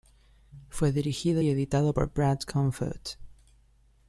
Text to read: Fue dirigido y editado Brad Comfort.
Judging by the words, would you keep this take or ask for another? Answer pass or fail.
fail